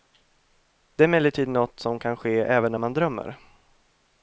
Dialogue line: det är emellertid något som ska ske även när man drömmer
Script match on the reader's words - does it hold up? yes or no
no